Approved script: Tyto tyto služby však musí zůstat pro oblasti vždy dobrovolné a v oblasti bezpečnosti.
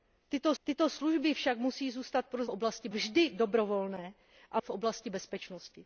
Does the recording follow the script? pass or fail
pass